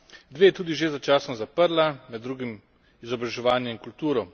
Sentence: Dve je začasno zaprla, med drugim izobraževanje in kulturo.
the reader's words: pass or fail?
fail